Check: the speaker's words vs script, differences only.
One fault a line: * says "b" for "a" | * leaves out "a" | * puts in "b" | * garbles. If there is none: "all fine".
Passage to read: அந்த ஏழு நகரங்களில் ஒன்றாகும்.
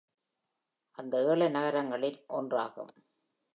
all fine